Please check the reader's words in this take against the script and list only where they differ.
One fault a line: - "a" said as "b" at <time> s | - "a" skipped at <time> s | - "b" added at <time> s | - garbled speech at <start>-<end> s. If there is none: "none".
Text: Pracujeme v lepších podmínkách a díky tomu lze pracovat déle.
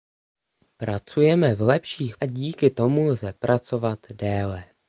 - "podmínkách" skipped at 2.2 s